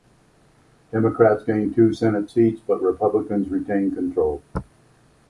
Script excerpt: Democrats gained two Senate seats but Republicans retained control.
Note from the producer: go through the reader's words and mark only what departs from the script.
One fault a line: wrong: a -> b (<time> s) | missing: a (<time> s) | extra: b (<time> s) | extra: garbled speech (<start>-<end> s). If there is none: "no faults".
no faults